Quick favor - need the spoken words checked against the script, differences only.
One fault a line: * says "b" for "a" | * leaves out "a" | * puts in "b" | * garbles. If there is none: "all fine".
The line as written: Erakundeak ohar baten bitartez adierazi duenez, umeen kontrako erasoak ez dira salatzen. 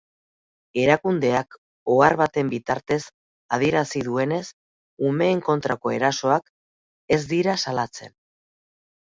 all fine